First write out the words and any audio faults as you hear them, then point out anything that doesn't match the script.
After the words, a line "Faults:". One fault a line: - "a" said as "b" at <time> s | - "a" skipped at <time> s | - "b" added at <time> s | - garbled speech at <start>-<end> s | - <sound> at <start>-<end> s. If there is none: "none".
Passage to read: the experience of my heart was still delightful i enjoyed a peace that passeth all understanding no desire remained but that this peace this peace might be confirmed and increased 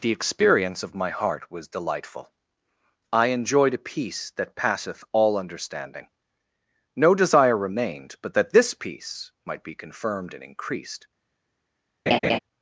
the experience of my heart was delightful i enjoyed a peace that passeth all understanding no desire remained but that this peace might be confirmed and increased
Faults:
- "still" skipped at 1.7 s
- "this peace" skipped at 9.3 s
- laugh at 12.1-12.4 s